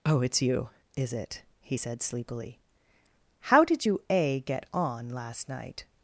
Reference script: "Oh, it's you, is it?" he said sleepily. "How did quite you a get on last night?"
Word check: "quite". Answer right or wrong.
wrong